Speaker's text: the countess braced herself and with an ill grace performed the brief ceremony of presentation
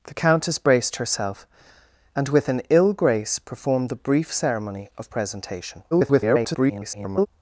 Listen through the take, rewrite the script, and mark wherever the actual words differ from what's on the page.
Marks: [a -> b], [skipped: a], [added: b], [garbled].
the countess braced herself and with an ill grace performed the brief ceremony of presentation [garbled]